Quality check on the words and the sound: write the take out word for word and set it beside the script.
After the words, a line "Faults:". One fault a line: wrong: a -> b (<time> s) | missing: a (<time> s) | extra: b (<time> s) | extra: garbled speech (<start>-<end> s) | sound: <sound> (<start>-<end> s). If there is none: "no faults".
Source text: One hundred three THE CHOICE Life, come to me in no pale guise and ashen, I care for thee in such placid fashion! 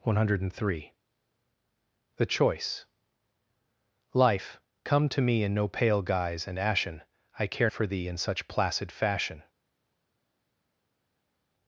One hundred three THE CHOICE Life, come to me in no pale guise and ashen, I care for thee in such placid fashion!
Faults:
no faults